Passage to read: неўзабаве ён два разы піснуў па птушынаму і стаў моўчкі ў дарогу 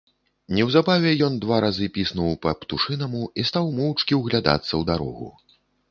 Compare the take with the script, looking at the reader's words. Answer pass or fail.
fail